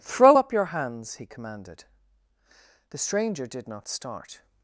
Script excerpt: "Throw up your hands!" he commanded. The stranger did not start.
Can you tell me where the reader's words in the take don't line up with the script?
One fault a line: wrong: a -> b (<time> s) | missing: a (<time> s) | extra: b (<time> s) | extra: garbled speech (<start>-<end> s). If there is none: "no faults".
no faults